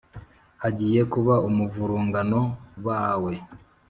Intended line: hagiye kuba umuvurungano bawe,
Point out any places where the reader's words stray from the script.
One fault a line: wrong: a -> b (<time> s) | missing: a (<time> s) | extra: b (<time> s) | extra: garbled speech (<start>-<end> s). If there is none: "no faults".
no faults